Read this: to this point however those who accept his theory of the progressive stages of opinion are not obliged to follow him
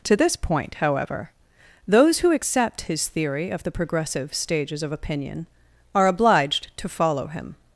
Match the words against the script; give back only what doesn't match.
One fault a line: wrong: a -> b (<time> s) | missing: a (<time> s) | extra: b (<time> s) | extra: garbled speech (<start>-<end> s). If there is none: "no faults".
missing: not (6.1 s)